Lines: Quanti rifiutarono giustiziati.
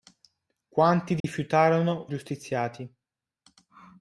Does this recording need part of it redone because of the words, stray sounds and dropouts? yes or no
yes